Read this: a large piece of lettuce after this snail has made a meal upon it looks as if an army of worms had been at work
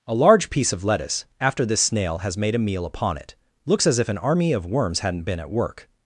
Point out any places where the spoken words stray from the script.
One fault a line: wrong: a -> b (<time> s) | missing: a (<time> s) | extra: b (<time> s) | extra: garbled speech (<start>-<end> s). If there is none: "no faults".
wrong: had -> hadn't (5.0 s)